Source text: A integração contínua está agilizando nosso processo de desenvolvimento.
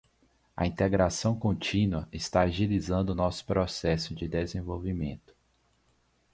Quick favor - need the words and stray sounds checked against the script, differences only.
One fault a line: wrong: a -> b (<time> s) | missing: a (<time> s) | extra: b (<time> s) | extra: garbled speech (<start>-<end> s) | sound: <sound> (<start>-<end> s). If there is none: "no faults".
no faults